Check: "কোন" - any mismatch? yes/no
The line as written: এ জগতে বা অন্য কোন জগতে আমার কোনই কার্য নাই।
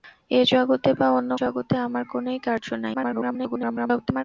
yes